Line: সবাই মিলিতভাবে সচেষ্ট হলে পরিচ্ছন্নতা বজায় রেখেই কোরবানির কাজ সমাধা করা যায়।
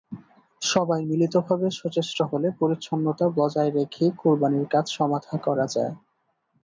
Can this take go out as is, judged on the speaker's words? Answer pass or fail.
pass